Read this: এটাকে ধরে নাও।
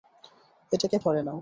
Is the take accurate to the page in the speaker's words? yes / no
yes